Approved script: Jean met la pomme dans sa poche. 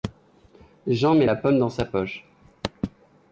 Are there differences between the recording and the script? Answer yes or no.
no